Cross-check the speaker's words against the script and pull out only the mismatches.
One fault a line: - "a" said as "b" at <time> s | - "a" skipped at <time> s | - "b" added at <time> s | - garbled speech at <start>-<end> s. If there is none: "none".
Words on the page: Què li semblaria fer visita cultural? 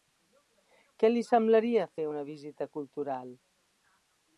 - "una" added at 2.1 s